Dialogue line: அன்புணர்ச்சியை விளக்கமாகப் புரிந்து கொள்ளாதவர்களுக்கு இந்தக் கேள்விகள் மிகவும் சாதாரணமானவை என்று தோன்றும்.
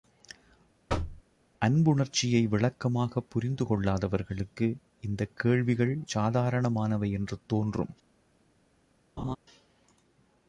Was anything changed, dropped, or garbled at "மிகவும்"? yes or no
yes